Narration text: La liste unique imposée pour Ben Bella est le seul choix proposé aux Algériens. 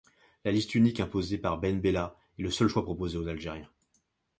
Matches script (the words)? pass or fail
fail